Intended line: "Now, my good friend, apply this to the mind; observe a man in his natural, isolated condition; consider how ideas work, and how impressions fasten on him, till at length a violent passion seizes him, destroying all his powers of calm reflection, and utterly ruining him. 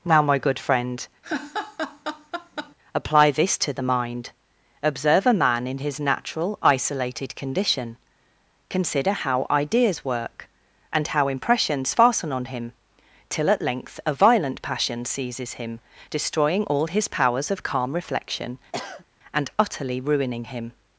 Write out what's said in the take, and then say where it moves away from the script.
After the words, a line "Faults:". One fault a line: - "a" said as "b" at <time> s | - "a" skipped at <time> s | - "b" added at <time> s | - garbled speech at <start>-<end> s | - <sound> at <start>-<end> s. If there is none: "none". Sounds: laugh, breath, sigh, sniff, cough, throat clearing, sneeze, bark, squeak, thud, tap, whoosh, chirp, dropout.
"Now, my good friend, apply this to the mind; observe a man in his natural, isolated condition; consider how ideas work, and how impressions fasten on him, till at length a violent passion seizes him, destroying all his powers of calm reflection, and utterly ruining him.
Faults:
- laugh at 1.2-2.8 s
- sniff at 18.7-19.1 s